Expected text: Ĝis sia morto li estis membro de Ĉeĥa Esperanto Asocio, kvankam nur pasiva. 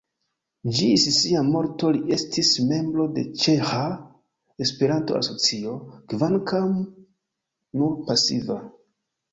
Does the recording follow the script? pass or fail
pass